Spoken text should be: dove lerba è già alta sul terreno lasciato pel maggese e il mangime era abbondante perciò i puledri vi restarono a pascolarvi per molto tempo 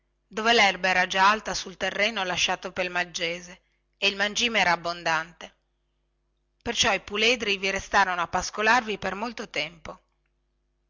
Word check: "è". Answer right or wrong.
wrong